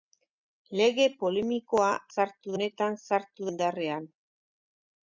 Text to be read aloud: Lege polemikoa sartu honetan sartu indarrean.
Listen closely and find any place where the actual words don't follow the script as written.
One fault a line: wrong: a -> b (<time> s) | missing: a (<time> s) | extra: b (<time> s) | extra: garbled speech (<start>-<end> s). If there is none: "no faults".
no faults